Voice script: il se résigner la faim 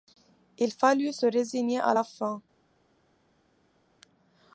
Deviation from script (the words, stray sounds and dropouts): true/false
true